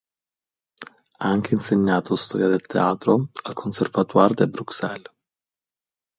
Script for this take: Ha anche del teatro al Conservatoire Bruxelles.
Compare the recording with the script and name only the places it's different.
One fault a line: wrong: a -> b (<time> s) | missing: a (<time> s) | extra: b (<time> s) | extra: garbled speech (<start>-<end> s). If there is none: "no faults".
extra: insegnato storia (1.5 s)
extra: de (4.3 s)